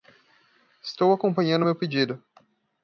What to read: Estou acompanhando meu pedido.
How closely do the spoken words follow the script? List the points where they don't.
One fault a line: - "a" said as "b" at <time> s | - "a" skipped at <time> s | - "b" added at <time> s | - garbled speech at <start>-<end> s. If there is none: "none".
none